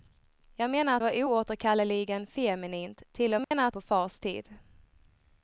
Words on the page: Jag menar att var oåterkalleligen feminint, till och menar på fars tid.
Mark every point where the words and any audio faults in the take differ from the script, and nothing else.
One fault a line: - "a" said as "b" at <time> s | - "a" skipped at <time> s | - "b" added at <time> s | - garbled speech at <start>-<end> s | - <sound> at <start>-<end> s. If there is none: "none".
- dropout at 3.4-3.5 s